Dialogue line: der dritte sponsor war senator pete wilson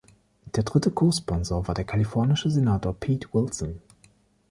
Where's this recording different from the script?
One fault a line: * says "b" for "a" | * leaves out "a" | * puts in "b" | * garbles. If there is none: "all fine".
* puts in "co"
* puts in "der kalifornische"